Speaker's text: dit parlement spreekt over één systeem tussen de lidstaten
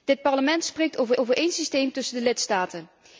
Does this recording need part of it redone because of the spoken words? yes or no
yes